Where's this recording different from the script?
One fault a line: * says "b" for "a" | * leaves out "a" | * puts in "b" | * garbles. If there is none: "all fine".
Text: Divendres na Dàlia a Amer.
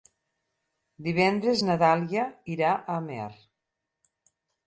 * puts in "irà"